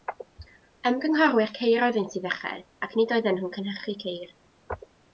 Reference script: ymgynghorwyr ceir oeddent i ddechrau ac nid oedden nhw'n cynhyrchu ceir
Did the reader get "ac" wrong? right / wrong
right